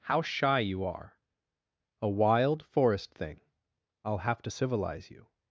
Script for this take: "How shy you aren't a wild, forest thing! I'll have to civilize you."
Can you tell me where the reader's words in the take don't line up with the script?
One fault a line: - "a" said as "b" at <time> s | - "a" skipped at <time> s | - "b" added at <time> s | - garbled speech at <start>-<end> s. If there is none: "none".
- "aren't" said as "are" at 0.8 s